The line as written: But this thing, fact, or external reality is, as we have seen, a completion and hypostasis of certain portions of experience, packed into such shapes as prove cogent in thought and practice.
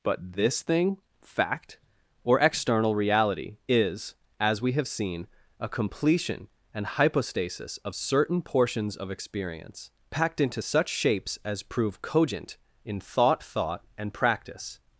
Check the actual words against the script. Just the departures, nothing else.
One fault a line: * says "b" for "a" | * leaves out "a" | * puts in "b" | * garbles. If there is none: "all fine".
* puts in "thought"